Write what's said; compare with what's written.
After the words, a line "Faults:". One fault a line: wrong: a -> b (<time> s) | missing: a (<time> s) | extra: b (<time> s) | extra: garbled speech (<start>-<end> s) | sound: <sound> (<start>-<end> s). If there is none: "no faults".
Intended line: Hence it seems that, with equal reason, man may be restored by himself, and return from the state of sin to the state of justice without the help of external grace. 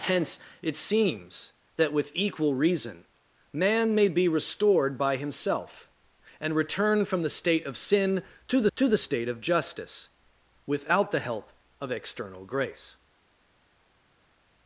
Hence it seems that, with equal reason, man may be restored by himself, and return from the state of sin to the to the state of justice without the help of external grace.
Faults:
extra: to the (8.7 s)